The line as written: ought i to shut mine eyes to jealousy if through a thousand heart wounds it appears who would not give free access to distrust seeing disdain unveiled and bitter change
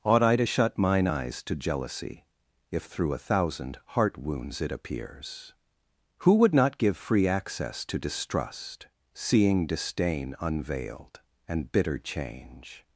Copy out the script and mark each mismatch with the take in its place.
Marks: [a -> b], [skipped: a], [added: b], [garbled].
ought i to shut mine eyes to jealousy if through a thousand heart wounds it appears who would not give free access to distrust seeing disdain unveiled and bitter change